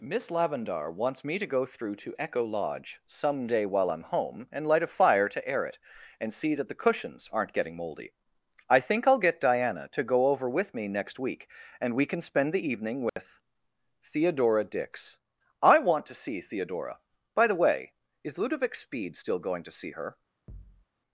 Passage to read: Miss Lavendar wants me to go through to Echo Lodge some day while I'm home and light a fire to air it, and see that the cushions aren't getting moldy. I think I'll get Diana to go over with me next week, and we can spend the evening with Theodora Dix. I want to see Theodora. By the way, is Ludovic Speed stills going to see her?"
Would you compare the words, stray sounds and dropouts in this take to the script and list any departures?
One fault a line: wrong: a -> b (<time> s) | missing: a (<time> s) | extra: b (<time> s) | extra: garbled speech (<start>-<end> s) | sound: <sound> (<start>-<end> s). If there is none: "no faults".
sound: dropout (13.1-13.2 s)
wrong: stills -> still (19.1 s)
sound: thud (20.5-20.8 s)